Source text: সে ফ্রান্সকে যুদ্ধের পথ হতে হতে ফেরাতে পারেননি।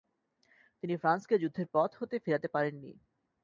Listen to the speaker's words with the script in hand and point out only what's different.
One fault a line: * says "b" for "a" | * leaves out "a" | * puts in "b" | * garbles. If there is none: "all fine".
* says "তিনি" for "সে"
* leaves out "হতে"